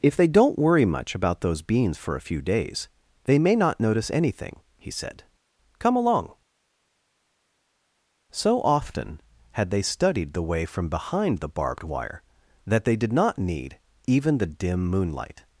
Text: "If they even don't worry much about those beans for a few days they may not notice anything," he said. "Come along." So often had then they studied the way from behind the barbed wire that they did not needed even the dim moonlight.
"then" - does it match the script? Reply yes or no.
no